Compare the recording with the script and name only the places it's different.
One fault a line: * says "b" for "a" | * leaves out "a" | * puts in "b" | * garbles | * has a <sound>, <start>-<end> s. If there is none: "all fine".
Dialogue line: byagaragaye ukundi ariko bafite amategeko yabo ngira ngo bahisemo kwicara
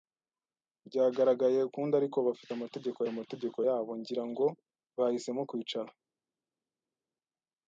* puts in "amategeko"